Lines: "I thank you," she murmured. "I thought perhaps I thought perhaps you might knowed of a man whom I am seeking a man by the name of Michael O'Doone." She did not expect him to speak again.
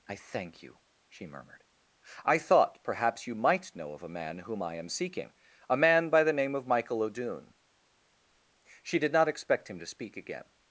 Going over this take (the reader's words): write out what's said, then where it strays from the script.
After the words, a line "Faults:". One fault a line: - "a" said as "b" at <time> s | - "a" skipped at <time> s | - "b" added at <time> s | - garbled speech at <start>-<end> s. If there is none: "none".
"I thank you," she murmured. "I thought perhaps you might know of a man whom I am seeking a man by the name of Michael O'Doone." She did not expect him to speak again.
Faults:
- "I thought perhaps" skipped at 3.3 s
- "knowed" said as "know" at 3.8 s